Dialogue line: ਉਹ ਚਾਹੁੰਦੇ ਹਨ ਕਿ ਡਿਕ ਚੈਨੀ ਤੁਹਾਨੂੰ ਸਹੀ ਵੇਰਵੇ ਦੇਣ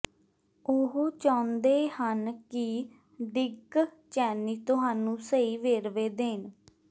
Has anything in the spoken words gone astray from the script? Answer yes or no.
no